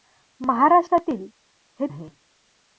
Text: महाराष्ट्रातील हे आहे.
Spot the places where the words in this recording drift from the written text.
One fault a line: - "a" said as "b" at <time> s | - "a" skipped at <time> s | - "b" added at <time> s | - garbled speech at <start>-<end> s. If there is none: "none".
none